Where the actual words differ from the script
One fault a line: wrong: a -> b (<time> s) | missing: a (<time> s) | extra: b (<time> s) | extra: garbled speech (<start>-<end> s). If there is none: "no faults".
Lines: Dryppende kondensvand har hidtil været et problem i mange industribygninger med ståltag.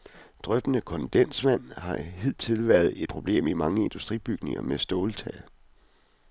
no faults